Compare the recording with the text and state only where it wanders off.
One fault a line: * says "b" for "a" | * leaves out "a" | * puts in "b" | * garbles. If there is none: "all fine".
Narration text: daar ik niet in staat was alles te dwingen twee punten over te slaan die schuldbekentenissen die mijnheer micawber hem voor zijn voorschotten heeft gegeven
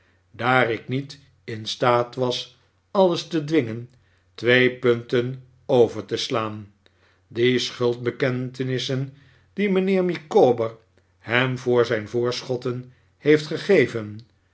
all fine